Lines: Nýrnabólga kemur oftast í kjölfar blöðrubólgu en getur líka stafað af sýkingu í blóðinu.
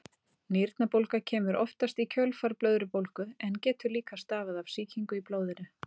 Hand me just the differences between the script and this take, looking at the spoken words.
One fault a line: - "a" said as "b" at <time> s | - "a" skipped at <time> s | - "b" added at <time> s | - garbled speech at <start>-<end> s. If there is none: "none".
none